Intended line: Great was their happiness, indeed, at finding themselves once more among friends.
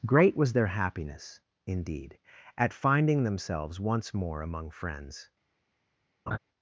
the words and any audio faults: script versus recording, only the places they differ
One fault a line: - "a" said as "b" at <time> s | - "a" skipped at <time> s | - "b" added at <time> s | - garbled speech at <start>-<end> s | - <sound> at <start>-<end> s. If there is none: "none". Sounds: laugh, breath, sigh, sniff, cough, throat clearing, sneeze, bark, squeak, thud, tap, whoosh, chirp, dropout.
- laugh at 6.3-6.4 s